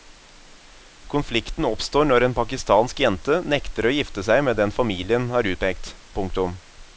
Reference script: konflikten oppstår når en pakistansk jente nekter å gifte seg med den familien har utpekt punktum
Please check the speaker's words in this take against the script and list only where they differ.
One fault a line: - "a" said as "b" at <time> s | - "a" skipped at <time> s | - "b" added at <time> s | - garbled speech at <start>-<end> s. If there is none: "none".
none